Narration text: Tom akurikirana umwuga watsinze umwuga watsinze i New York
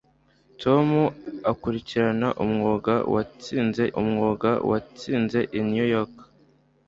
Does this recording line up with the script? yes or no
yes